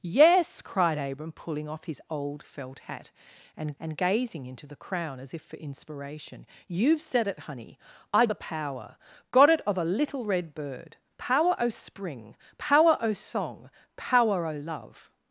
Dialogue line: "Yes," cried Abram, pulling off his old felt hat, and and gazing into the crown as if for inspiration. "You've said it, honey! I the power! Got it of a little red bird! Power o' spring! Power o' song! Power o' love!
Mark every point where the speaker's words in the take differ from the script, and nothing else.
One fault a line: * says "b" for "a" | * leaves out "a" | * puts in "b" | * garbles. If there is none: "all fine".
all fine